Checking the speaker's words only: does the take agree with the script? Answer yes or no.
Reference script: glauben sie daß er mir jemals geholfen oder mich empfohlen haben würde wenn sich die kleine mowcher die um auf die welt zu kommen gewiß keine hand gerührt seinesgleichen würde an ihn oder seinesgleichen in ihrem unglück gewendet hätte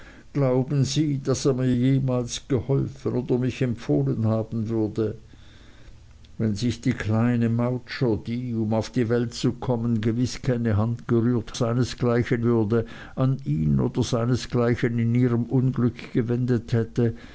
yes